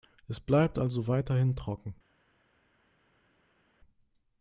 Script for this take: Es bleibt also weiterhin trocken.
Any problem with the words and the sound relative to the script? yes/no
no